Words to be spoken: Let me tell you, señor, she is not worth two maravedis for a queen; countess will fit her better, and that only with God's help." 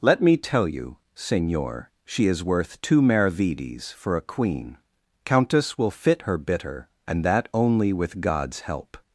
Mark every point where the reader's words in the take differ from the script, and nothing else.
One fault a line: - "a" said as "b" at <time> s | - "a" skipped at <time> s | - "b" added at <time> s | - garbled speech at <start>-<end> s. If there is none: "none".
- "not" skipped at 2.4 s
- "better" said as "bitter" at 6.4 s